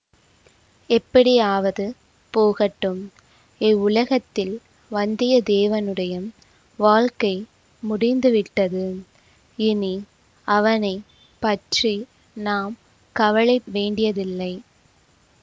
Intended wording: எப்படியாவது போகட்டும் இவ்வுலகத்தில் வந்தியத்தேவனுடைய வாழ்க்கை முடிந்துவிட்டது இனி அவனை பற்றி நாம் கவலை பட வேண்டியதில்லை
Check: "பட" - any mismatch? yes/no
yes